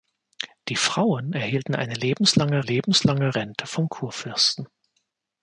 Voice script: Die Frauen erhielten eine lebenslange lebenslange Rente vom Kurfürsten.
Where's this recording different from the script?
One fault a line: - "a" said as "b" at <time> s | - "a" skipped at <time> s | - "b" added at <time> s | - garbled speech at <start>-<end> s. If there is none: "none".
none